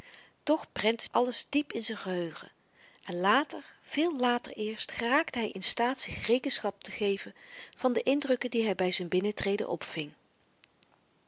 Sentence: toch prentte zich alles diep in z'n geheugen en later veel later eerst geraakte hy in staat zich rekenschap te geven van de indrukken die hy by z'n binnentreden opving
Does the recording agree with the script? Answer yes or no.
no